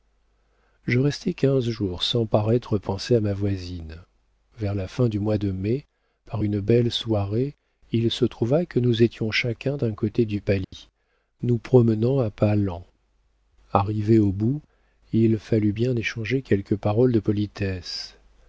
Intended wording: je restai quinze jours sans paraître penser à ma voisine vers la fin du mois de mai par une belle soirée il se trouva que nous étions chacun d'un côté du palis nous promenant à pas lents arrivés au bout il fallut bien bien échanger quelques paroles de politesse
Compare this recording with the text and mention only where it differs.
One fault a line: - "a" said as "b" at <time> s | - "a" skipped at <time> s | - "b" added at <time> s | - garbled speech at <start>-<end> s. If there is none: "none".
- "bien" skipped at 15.9 s